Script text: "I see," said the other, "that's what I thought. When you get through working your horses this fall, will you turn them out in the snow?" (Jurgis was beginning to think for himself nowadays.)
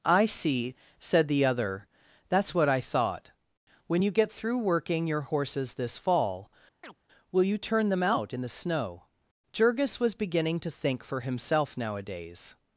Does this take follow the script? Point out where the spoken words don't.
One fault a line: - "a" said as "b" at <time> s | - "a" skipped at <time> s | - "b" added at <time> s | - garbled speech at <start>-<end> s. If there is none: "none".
none